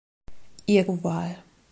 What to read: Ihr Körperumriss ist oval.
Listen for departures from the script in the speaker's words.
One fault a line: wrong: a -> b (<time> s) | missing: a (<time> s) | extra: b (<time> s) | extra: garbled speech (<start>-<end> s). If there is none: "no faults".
missing: Körperumriss ist (0.9 s)